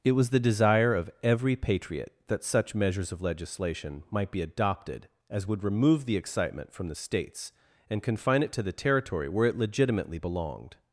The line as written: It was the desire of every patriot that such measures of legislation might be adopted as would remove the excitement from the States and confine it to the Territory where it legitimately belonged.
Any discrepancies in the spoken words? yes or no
no